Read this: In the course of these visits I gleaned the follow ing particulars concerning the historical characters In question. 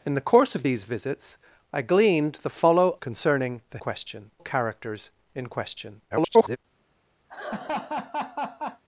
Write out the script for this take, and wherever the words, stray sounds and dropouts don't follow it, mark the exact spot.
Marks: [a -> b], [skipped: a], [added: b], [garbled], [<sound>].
In the course of these visits I gleaned the follow [skipped: ing particulars] concerning the [historical -> question] characters In question. [garbled] [laugh]